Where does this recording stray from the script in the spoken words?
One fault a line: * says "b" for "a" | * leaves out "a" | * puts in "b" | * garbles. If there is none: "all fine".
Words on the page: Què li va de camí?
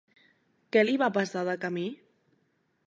* puts in "passar"